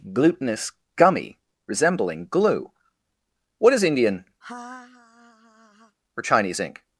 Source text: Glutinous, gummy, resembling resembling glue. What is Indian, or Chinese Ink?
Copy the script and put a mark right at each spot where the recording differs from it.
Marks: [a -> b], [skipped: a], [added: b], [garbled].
Glutinous, gummy, resembling [skipped: resembling] glue. What is Indian, or Chinese Ink?